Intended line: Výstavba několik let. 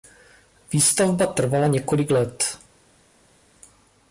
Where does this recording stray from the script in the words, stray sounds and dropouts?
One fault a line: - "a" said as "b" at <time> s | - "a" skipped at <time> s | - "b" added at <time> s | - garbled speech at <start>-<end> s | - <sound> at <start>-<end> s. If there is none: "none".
- "trvala" added at 1.3 s